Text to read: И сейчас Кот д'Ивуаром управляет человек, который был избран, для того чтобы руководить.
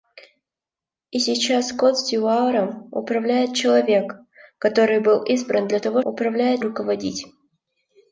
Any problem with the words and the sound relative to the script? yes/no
yes